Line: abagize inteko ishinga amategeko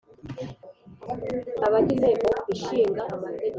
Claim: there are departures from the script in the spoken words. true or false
false